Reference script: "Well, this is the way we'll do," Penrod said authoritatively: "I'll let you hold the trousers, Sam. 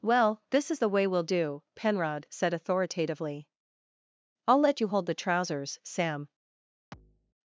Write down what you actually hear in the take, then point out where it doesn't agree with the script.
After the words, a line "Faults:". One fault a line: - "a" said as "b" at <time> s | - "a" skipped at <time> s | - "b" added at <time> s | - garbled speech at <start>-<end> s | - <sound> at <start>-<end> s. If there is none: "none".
"Well, this is the way we'll do," Penrod said authoritatively: "I'll let you hold the trousers, Sam.
Faults:
- thud at 6.9-7.3 s